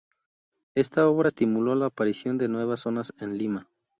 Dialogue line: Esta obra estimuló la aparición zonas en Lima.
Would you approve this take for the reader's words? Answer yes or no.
no